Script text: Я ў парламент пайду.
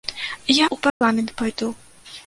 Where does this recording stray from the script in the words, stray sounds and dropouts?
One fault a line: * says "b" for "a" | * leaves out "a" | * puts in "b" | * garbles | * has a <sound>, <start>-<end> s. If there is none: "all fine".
* has a dropout, 0.9-1.0 s